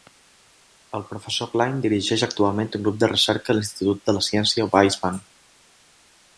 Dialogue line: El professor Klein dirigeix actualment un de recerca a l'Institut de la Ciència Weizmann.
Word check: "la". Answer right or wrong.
right